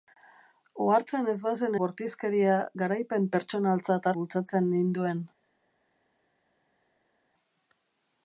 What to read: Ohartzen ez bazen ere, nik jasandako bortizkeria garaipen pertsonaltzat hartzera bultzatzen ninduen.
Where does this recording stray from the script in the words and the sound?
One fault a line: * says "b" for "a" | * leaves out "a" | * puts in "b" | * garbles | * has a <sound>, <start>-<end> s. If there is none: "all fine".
* leaves out "ere nik jasandako"
* leaves out "hartzera"